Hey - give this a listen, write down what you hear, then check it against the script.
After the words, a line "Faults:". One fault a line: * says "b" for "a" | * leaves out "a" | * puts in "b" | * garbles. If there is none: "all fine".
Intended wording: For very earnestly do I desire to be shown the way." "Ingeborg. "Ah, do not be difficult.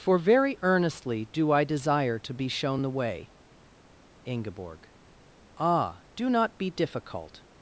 For very earnestly do I desire to be shown the way." "Ingeborg. "Ah, do not be difficult.
Faults:
all fine